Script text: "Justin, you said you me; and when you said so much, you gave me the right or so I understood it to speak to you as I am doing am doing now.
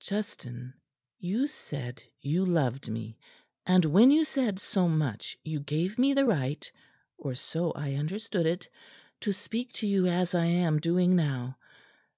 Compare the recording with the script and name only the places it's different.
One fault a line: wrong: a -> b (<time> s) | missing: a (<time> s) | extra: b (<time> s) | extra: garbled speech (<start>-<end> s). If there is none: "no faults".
extra: loved (2.4 s)
missing: am doing (11.2 s)